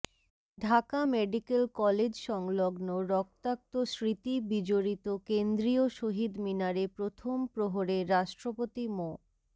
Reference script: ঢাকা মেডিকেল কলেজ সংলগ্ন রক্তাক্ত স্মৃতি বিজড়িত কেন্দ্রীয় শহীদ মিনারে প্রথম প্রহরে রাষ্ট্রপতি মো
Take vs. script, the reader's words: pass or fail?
pass